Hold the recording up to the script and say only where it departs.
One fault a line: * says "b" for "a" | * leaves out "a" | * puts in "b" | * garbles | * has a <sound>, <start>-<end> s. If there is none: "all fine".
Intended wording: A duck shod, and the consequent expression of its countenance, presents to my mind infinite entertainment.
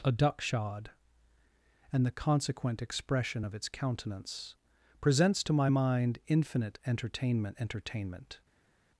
* puts in "entertainment"